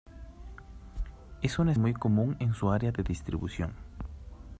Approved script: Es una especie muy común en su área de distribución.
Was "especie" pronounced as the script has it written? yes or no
no